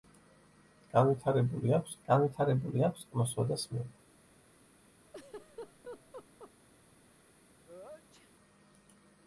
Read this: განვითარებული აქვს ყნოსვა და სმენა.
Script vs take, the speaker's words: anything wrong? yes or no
yes